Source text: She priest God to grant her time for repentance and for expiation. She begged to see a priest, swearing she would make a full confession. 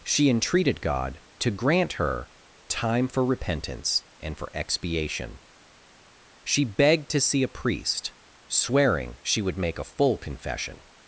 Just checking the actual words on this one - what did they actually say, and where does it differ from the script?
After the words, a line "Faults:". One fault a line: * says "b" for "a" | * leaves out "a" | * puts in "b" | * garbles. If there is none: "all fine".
She entreated God to grant her time for repentance and for expiation. She begged to see a priest, swearing she would make a full confession.
Faults:
* says "entreated" for "priest"